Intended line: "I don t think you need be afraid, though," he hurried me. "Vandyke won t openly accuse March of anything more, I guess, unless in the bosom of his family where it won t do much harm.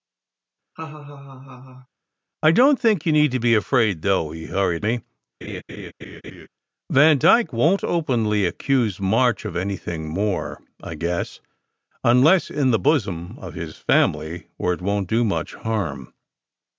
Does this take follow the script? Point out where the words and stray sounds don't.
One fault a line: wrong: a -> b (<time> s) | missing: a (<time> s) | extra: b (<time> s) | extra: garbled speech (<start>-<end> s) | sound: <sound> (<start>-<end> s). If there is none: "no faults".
sound: laugh (0.8-1.9 s)
sound: laugh (5.4-6.5 s)